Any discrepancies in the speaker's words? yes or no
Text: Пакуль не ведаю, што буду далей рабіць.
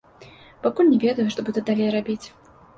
no